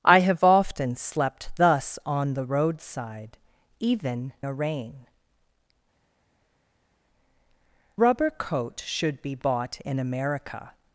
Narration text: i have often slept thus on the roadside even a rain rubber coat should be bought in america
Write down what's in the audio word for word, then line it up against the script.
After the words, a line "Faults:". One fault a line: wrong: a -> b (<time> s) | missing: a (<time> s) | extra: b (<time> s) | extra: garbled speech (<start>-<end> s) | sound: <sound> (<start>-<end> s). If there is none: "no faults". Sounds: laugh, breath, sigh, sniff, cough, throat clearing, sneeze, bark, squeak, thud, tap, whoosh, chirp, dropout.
i have often slept thus on the roadside even a rain rubber coat should be bought in america
Faults:
no faults